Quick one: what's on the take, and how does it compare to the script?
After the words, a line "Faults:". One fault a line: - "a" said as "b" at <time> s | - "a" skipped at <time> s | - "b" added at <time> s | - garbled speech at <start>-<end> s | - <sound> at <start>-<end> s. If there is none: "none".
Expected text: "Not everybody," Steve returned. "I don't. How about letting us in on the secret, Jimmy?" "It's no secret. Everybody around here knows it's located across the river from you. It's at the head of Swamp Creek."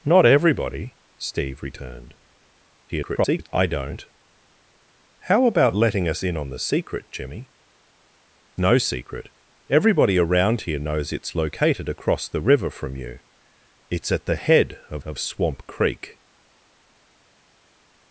"Not everybody," Steve returned. [garbled] "I don't. How about letting us in on the secret, Jimmy?" "No secret. Everybody around here knows it's located across the river from you. It's at the head of of Swamp Creek."
Faults:
- garbled speech at 2.9-3.5 s
- "It's" skipped at 7.5 s
- "of" added at 15.1 s